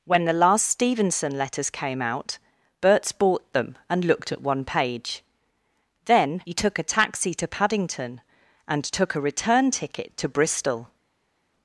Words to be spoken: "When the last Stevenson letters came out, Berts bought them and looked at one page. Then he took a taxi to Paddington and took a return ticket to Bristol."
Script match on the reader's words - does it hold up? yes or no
yes